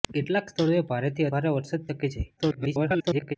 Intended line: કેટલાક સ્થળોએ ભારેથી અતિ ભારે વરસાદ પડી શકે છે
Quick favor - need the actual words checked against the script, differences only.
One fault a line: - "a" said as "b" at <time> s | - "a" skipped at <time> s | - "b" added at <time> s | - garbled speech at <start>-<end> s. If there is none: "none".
- "અતિ" skipped at 1.3 s
- "પડી" skipped at 1.9 s
- garbled speech at 2.4-3.4 s